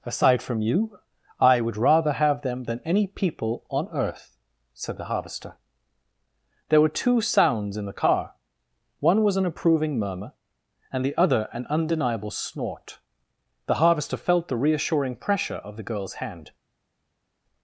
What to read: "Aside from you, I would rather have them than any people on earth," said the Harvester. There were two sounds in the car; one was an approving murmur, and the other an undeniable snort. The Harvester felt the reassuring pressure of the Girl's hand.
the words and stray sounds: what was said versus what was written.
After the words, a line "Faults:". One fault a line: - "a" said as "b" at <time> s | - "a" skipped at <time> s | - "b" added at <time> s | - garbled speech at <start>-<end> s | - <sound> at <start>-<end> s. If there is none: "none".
"Aside from you, I would rather have them than any people on earth," said the Harvester. There were two sounds in the car; one was an approving murmur, and the other an undeniable snort. The Harvester felt the reassuring pressure of the Girl's hand.
Faults:
none